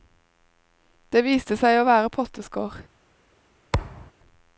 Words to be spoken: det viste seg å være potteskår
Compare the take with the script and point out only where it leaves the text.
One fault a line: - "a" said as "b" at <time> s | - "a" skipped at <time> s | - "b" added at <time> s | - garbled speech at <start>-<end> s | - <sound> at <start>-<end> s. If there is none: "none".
- thud at 3.7-4.1 s